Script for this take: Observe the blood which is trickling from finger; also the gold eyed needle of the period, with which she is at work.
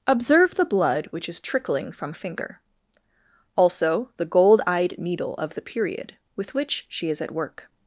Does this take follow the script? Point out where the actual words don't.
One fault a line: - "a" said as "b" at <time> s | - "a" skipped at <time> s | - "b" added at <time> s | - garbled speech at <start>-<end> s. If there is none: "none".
none